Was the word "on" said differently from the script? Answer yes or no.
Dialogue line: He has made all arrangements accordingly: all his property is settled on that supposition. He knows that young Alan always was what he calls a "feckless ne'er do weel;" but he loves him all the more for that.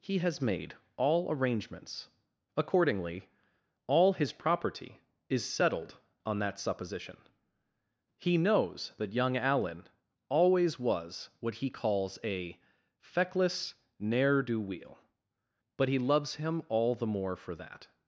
no